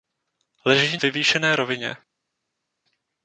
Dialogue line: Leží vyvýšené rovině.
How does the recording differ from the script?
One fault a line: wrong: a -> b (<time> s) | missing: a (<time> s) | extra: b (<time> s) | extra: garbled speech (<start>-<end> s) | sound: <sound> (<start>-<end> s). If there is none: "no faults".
no faults